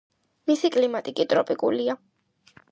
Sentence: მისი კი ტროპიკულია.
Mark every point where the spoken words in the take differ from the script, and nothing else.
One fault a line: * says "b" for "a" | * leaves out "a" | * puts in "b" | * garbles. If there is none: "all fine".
* puts in "კლიმატი"